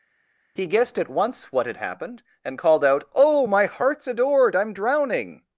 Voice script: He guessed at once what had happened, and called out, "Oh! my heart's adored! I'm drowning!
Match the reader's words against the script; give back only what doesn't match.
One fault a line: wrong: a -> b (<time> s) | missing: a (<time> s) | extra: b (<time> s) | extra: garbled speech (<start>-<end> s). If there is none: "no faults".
no faults